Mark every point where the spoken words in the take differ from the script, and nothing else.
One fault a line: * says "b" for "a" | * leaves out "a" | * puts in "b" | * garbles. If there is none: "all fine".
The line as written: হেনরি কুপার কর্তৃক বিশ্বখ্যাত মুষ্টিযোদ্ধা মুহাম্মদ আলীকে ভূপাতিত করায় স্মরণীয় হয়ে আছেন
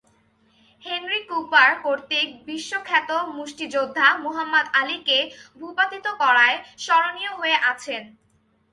all fine